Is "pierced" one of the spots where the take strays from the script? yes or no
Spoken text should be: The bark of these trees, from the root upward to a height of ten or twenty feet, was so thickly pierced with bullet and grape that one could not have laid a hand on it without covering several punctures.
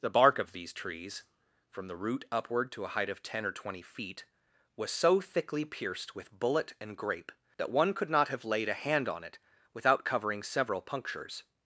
no